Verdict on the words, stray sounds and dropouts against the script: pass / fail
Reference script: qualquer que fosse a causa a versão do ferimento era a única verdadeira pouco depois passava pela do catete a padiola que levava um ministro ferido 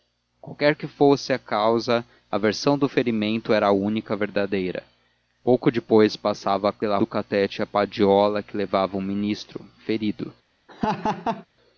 fail